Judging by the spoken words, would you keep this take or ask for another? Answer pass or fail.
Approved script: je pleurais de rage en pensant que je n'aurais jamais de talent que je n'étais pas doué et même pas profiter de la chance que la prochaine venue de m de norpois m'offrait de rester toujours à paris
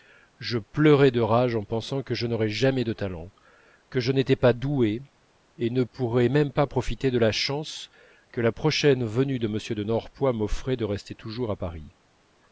fail